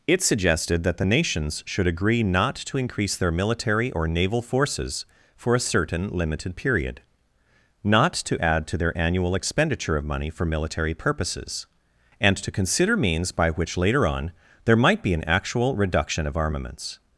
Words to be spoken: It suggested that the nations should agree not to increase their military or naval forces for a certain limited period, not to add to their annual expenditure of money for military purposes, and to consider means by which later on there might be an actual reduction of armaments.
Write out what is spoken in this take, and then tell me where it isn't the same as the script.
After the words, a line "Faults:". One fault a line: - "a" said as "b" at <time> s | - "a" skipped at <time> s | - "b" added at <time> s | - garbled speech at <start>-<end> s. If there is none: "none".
It suggested that the nations should agree not to increase their military or naval forces for a certain limited period, not to add to their annual expenditure of money for military purposes, and to consider means by which later on there might be an actual reduction of armaments.
Faults:
none